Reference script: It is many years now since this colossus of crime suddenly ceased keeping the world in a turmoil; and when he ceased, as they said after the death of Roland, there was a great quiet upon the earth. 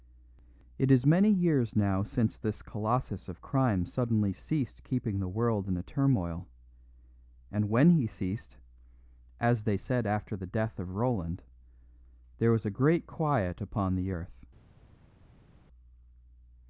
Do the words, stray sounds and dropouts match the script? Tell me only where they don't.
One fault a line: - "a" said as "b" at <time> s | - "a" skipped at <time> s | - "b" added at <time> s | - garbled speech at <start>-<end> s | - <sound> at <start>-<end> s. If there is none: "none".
none